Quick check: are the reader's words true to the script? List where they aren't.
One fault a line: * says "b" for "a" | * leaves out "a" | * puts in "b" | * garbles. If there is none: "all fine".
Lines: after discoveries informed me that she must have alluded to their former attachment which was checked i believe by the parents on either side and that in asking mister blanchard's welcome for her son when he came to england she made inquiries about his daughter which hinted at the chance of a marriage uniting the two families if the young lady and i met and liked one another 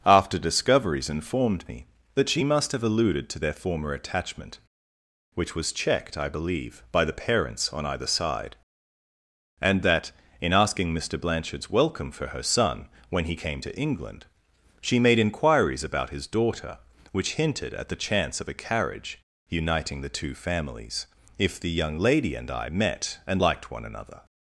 * says "carriage" for "marriage"